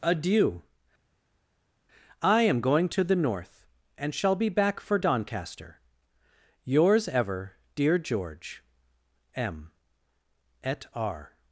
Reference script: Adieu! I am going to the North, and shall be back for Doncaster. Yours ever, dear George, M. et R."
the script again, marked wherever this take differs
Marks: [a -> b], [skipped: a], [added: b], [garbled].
Adieu! I am going to the North, and shall be back for Doncaster. Yours ever, dear George, M. et R."